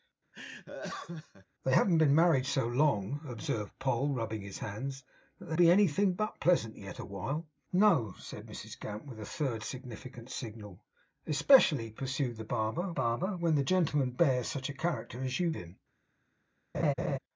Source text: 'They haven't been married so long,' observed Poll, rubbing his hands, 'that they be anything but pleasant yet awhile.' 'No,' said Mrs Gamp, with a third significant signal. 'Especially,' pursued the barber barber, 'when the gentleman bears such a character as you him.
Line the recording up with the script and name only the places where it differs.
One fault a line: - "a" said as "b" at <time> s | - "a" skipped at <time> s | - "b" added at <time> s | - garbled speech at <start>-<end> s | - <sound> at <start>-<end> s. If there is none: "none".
- laugh at 0.3-1.5 s
- laugh at 16.7-17.2 s